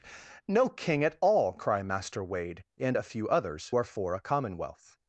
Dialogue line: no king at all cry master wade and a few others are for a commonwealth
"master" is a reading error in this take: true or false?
false